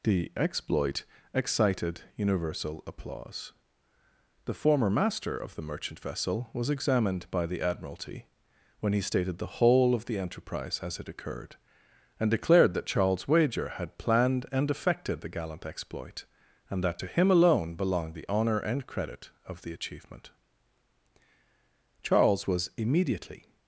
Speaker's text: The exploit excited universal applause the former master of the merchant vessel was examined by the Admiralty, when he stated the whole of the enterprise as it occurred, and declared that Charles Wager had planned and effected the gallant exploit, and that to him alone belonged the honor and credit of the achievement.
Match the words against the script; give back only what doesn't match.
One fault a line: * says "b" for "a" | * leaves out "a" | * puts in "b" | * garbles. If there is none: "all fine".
* puts in "Charles was immediately"